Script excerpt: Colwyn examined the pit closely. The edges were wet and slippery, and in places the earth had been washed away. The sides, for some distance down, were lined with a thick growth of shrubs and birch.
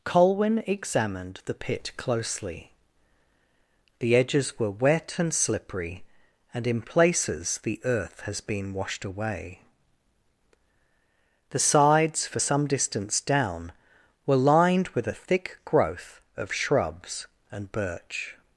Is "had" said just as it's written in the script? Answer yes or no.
no